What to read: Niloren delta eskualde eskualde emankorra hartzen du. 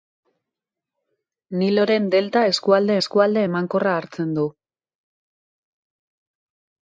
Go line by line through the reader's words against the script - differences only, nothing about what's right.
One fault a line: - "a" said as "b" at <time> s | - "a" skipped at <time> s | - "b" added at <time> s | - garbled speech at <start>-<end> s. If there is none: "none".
none